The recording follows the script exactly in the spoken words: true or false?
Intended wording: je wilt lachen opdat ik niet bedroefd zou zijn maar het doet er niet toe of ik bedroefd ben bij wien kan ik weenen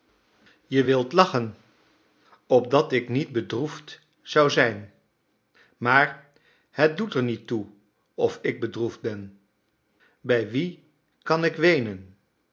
true